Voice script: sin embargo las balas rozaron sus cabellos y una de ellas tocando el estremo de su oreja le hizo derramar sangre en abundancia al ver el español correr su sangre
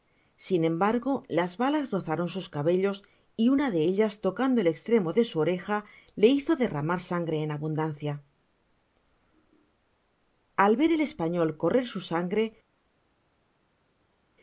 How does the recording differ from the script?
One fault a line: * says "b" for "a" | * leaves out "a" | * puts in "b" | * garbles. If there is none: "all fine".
all fine